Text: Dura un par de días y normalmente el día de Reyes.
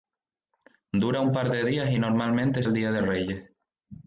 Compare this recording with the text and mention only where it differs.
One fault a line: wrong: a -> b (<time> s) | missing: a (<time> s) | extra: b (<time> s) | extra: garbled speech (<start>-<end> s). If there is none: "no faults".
no faults